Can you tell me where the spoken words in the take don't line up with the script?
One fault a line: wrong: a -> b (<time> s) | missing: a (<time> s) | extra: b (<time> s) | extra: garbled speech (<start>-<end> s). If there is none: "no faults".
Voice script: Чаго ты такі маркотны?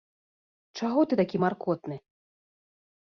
no faults